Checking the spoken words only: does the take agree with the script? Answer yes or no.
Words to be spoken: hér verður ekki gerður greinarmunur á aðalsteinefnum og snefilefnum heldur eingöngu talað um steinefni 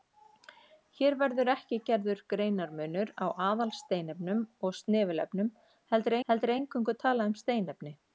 no